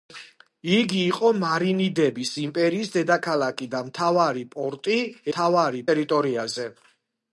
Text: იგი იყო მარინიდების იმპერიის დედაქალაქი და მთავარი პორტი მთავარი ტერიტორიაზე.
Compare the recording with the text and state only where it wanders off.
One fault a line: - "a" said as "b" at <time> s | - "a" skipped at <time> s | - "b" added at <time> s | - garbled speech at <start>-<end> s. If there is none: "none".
none